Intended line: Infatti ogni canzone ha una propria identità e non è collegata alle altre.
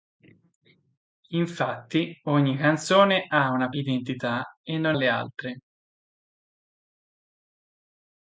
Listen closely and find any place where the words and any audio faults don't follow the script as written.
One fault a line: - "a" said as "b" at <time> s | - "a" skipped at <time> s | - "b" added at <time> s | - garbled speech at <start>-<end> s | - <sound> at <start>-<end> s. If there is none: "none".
- "propria" skipped at 3.7 s
- "è collegata" skipped at 5.0 s